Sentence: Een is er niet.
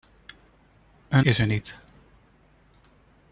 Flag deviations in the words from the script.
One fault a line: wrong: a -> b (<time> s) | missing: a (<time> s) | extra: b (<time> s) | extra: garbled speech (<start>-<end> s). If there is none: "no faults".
no faults